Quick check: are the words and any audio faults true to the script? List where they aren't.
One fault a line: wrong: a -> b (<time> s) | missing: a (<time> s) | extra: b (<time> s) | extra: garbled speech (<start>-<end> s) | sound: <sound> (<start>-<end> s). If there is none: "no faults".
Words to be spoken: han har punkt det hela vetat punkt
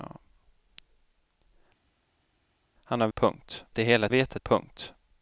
no faults